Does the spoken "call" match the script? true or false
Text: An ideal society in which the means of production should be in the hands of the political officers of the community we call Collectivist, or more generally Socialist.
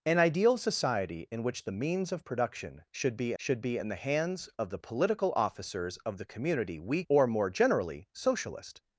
false